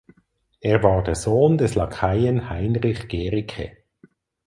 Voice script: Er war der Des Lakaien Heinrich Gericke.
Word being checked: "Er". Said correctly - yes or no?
yes